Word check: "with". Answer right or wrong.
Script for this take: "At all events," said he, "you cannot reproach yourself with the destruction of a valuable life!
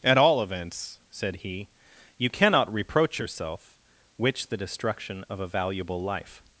wrong